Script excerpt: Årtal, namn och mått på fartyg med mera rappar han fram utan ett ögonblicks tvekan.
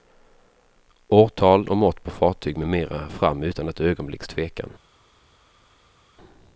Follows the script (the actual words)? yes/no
no